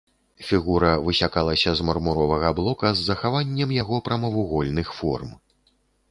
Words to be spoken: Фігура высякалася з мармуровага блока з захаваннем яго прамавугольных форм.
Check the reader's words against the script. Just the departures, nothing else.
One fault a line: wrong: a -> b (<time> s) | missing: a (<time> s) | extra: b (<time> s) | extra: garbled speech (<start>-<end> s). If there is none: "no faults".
no faults